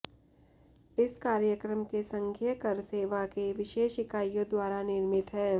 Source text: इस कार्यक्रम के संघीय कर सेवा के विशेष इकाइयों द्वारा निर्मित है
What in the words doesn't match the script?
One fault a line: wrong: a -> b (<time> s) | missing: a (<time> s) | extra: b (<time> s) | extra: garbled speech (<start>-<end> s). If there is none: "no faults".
no faults